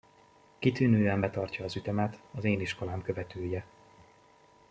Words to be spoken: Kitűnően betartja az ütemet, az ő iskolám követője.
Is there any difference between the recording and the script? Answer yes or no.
yes